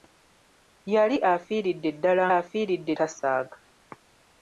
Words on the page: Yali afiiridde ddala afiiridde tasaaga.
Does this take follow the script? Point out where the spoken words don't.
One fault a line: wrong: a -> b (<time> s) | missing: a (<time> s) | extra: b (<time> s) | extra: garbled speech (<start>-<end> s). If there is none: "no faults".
no faults